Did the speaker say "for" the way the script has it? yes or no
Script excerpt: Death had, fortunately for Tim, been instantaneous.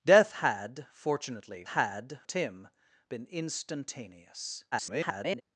no